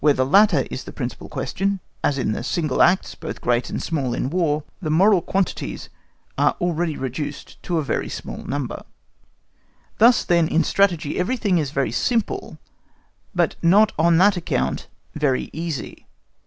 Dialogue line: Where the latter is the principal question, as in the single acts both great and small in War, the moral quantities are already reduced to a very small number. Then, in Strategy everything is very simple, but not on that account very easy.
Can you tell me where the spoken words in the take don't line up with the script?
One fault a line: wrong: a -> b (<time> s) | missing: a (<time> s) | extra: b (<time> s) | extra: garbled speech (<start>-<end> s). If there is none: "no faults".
extra: Thus (10.0 s)